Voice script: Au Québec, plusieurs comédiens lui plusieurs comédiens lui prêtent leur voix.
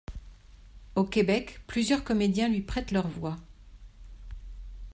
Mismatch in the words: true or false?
true